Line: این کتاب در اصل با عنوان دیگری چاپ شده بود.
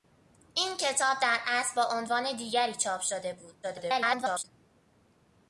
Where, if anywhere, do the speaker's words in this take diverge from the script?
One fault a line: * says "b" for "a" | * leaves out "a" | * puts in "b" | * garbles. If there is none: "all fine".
* garbles